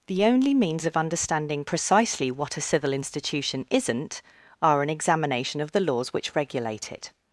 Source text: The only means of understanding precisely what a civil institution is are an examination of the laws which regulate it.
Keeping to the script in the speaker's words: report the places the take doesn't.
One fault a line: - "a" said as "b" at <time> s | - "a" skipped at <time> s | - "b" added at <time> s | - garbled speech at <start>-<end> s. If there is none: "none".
- "is" said as "isn't" at 3.7 s